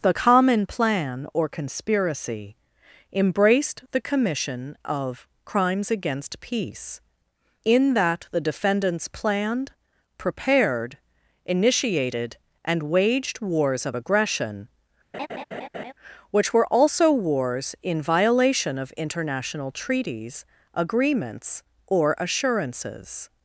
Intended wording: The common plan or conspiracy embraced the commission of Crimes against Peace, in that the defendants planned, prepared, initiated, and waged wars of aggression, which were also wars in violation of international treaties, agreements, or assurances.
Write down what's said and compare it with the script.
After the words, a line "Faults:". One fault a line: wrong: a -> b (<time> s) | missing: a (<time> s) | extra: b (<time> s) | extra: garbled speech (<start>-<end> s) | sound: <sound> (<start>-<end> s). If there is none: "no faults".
The common plan or conspiracy embraced the commission of Crimes against Peace, in that the defendants planned, prepared, initiated, and waged wars of aggression, which were also wars in violation of international treaties, agreements, or assurances.
Faults:
sound: laugh (15.1-15.9 s)